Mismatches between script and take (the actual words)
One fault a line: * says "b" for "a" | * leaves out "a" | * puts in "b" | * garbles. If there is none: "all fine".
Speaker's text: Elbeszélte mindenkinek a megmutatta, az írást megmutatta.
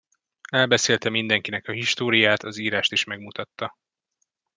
* says "históriát" for "megmutatta"
* puts in "is"